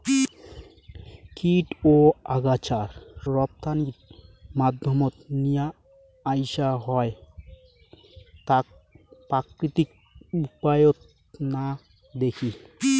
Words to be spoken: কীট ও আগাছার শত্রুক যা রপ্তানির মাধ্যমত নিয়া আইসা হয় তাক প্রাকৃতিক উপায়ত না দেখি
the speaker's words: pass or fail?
fail